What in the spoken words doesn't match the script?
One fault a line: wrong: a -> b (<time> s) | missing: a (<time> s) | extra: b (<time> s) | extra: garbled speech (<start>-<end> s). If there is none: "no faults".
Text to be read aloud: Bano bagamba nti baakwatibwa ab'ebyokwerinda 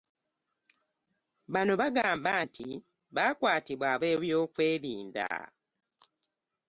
no faults